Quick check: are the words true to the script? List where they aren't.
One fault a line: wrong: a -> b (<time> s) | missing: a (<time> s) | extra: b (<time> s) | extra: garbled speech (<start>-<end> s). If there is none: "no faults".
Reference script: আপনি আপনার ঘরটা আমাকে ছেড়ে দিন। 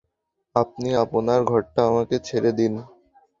no faults